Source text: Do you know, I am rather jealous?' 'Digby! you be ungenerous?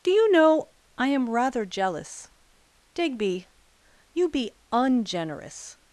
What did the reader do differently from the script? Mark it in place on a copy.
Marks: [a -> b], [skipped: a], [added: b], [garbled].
Do you know, I am rather jealous?' 'Digby! you be ungenerous?